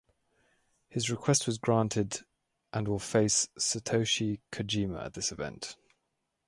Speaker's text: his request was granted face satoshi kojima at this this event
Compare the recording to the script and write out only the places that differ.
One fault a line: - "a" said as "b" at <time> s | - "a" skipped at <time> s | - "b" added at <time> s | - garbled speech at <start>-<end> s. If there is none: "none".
- "and will" added at 2.7 s
- "this" skipped at 5.3 s